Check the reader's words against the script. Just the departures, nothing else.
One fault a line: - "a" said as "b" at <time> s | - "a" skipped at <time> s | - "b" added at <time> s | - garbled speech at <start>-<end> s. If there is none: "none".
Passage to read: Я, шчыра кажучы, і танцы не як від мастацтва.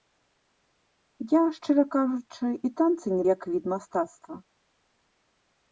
none